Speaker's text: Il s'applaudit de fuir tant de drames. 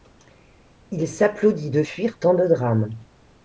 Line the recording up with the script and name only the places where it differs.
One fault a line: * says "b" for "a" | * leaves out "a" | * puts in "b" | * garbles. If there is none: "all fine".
all fine